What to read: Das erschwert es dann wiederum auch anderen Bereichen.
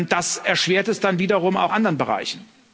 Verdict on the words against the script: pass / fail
pass